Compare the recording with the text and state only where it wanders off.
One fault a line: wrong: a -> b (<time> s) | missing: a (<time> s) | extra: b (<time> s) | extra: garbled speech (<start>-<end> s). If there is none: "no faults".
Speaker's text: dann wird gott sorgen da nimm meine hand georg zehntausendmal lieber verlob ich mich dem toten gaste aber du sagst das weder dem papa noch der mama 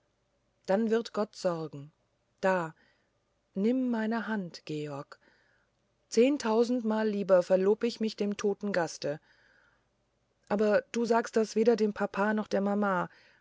no faults